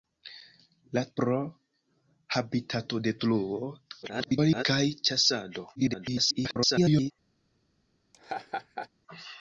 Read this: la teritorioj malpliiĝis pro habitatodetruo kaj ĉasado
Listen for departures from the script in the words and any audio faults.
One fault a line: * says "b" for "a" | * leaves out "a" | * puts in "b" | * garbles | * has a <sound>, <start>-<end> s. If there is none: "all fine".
* leaves out "teritorioj malpliiĝis"
* garbles
* garbles
* has a laugh, 8.1-8.9 s